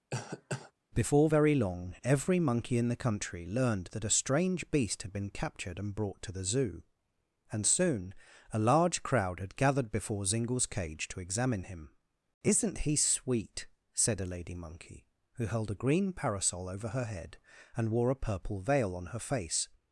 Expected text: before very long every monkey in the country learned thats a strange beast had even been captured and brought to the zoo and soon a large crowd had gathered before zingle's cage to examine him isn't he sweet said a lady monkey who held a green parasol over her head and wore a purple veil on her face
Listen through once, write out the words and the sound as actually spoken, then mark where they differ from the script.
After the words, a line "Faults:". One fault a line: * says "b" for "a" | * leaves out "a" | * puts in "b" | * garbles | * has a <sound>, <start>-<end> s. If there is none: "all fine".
before very long every monkey in the country learned that a strange beast had been captured and brought to the zoo and soon a large crowd had gathered before zingle's cage to examine him isn't he sweet said a lady monkey who held a green parasol over her head and wore a purple veil on her face
Faults:
* has a cough, 0.1-0.7 s
* says "that" for "thats"
* leaves out "even"